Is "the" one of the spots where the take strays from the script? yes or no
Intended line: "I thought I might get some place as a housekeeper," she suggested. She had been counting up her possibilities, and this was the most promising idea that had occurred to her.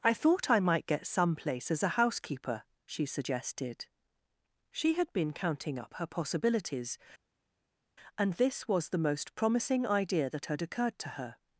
no